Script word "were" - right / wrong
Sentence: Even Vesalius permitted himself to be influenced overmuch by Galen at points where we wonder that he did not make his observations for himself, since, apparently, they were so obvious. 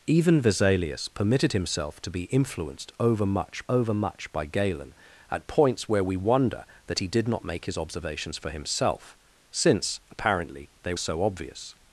wrong